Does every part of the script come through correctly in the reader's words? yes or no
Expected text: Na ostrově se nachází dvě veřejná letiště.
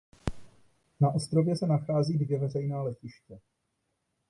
yes